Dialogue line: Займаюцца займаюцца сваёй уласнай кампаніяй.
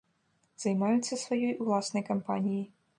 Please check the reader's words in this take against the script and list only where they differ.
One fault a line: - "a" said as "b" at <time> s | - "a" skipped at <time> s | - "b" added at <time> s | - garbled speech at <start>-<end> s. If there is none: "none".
- "займаюцца" skipped at 1.2 s